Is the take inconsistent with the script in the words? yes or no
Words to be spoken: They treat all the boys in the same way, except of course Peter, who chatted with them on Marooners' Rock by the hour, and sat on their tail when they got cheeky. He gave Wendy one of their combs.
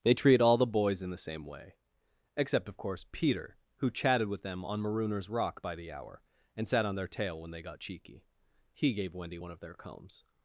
no